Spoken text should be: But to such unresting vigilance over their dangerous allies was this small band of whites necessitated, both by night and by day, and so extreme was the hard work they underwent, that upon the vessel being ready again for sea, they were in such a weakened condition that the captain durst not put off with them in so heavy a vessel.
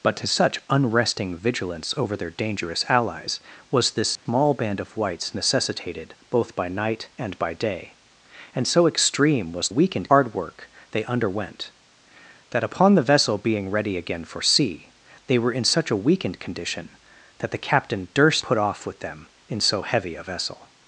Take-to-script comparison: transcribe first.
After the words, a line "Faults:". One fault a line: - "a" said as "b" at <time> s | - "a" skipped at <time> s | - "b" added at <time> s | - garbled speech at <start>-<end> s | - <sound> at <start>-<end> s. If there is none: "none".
But to such unresting vigilance over their dangerous allies was this small band of whites necessitated, both by night and by day, and so extreme was weakened hard work they underwent, that upon the vessel being ready again for sea, they were in such a weakened condition that the captain durst put off with them in so heavy a vessel.
Faults:
- dropout at 4.2-4.3 s
- "the" said as "weakened" at 9.7 s
- "not" skipped at 18.4 s